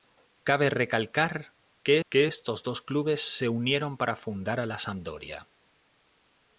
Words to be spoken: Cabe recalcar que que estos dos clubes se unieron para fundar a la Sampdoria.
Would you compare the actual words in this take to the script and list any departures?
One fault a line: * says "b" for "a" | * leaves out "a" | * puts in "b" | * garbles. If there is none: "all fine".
all fine